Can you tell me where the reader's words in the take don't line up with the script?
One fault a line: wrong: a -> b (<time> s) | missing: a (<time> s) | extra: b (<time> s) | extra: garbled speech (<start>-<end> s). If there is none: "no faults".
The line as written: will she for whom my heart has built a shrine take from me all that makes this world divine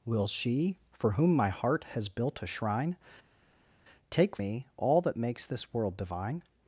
missing: from (4.4 s)